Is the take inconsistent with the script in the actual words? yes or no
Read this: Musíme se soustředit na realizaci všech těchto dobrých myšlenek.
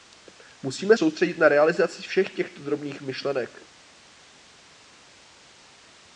yes